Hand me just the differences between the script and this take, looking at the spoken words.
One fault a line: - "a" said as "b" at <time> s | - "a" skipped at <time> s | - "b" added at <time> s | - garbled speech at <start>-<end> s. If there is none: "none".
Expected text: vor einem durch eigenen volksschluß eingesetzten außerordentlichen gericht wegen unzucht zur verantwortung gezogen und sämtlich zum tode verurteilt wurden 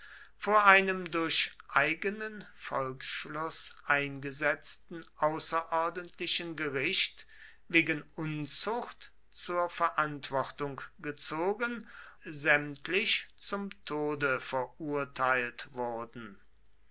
- "und" skipped at 11.9 s